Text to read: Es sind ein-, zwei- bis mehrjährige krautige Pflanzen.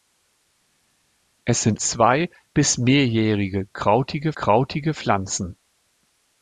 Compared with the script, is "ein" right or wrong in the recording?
wrong